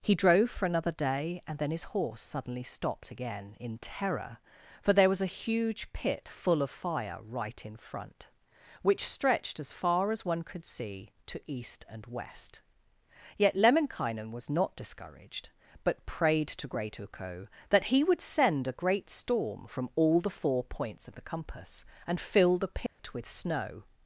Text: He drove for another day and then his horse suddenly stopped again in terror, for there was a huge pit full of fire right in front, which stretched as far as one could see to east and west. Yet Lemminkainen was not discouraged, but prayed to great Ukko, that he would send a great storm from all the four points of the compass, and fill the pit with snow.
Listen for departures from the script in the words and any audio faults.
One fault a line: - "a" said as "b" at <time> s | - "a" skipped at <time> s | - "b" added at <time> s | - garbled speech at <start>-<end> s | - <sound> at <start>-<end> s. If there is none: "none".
- dropout at 22.9-23.0 s